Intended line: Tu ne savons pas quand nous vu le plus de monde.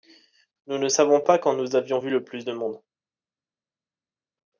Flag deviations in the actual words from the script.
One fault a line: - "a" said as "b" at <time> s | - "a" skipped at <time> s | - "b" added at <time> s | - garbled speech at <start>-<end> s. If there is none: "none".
- "Tu" said as "Nous" at 0.7 s
- "avions" added at 1.8 s